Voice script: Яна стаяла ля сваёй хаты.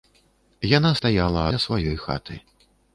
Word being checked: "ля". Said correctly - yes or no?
yes